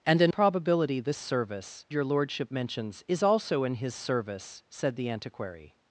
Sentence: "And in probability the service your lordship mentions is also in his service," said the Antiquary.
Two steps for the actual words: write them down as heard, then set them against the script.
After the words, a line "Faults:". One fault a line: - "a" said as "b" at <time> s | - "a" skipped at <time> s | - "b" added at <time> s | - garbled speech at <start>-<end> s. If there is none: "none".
"And in probability the service your lordship mentions is also in his service," said the Antiquary.
Faults:
none